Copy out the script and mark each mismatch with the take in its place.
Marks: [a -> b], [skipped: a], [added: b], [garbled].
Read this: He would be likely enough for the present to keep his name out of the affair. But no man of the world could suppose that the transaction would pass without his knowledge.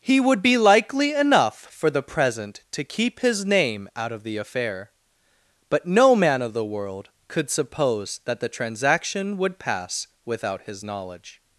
He would be likely enough for the present to keep his name out of the affair. But no man of the world could suppose that the transaction would pass without his knowledge.